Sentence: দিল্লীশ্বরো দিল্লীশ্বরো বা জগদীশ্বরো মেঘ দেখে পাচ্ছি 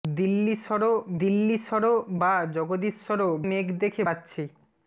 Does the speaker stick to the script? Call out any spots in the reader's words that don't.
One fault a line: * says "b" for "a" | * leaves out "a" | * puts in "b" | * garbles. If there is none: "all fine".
all fine